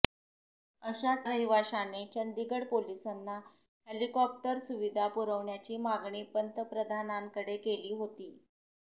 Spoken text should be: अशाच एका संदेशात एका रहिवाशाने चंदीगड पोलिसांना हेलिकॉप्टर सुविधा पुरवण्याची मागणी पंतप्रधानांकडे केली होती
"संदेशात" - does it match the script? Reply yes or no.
no